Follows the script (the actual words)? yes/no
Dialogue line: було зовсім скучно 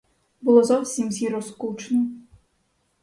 no